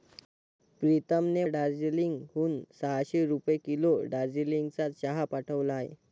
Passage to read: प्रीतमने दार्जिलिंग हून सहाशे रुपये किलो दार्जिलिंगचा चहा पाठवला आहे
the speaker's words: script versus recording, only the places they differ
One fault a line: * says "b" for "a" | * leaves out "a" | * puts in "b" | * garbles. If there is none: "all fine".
all fine